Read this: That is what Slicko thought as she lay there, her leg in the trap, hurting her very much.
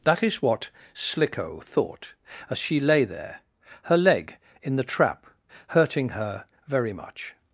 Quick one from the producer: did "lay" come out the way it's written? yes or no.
yes